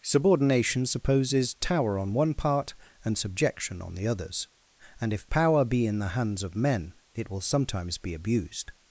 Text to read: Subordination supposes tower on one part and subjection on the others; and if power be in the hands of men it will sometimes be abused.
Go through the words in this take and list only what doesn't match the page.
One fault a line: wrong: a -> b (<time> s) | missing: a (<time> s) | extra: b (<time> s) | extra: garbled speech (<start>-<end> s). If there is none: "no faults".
no faults